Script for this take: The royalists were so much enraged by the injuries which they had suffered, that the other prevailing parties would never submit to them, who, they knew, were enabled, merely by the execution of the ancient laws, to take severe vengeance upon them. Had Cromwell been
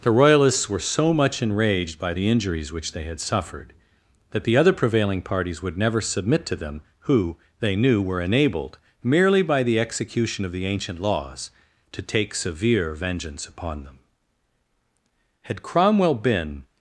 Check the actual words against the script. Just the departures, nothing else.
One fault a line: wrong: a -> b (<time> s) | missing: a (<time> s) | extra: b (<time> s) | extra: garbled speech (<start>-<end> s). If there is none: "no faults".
no faults